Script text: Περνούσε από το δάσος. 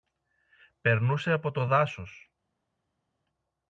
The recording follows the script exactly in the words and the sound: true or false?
true